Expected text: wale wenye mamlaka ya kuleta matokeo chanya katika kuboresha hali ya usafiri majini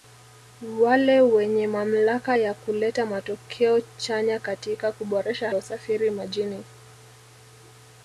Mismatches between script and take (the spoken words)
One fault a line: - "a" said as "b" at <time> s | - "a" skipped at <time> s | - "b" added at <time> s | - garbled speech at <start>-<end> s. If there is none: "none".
- "hali" skipped at 5.5 s